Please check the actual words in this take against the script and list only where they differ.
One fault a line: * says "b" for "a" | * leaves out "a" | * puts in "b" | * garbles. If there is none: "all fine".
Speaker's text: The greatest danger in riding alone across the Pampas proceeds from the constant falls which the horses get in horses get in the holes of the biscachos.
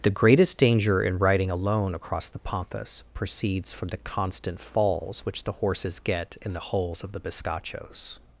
* leaves out "horses get in"